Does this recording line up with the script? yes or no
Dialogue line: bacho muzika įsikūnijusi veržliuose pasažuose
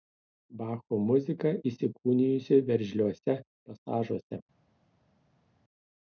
yes